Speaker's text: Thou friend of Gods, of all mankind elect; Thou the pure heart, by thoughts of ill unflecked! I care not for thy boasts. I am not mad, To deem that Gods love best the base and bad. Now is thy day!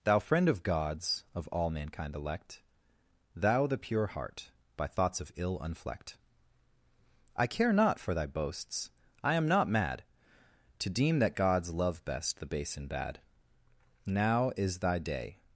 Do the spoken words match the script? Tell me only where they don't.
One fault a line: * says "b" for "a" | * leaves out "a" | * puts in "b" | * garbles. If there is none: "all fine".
all fine